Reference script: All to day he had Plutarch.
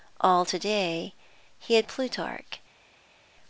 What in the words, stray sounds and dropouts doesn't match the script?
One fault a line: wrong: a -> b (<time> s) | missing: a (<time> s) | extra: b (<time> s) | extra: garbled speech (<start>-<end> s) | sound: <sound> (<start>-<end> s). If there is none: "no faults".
no faults